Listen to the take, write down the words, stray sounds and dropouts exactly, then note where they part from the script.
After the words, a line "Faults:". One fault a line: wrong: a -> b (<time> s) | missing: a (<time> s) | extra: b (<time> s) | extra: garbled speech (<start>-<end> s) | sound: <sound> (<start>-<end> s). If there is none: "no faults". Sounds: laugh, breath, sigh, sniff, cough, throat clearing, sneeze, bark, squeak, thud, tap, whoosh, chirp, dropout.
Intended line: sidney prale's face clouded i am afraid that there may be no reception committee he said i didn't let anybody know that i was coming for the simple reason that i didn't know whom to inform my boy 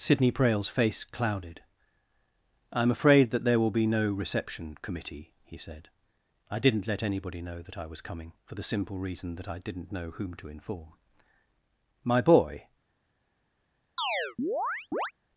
sidney prale's face clouded i am afraid that there will be no reception committee he said i didn't let anybody know that i was coming for the simple reason that i didn't know whom to inform my boy
Faults:
wrong: may -> will (3.6 s)
sound: chirp (14.0-15.1 s)